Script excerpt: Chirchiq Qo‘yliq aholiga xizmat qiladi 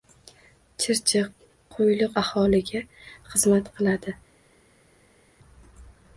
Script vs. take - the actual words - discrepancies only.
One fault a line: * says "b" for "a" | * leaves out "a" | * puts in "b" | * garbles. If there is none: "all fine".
all fine